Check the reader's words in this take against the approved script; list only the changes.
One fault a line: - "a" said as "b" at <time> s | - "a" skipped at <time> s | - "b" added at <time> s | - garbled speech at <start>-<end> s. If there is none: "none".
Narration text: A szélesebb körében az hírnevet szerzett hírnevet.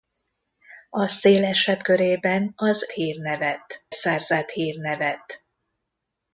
none